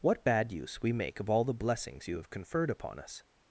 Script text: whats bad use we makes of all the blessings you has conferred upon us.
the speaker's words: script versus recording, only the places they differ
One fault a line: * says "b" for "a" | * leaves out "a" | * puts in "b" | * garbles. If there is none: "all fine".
* says "what" for "whats"
* says "make" for "makes"
* says "have" for "has"